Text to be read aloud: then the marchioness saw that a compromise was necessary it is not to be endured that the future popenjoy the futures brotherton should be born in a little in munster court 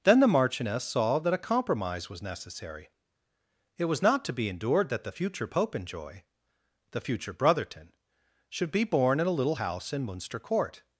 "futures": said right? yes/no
no